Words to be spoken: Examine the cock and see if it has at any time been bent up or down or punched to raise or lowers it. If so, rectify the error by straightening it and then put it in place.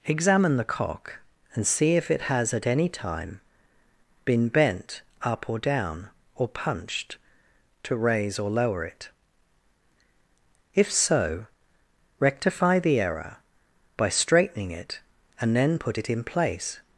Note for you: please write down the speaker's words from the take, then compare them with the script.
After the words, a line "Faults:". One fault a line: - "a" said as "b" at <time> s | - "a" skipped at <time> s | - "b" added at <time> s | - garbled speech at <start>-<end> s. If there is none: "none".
Examine the cock and see if it has at any time been bent up or down or punched to raise or lower it. If so, rectify the error by straightening it and then put it in place.
Faults:
- "lowers" said as "lower" at 8.5 s